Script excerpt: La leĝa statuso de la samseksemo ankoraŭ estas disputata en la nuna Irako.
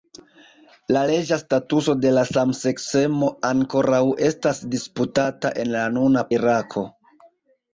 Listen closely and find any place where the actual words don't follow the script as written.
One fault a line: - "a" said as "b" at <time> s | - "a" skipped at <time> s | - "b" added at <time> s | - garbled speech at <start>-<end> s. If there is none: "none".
none